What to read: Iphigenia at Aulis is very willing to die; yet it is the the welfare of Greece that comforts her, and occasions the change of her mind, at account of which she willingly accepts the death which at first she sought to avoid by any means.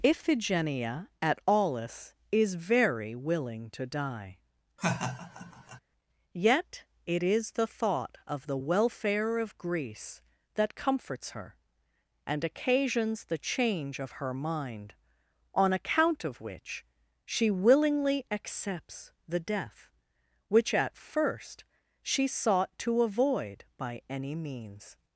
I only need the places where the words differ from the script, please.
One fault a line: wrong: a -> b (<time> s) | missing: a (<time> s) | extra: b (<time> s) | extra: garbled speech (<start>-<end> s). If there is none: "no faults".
extra: thought of (7.7 s)
wrong: at -> on (15.5 s)